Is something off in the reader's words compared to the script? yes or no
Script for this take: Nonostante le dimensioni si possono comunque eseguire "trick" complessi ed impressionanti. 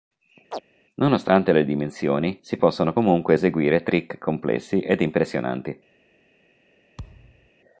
no